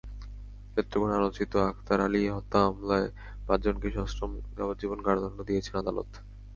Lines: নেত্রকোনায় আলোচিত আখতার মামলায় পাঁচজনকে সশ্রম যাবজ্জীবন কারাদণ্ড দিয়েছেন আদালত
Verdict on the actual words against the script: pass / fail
fail